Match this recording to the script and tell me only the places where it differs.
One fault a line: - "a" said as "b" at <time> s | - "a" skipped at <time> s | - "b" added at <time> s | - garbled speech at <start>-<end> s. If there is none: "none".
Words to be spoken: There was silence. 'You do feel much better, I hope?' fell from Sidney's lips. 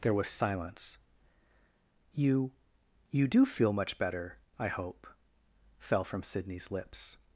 - "You" added at 3.1 s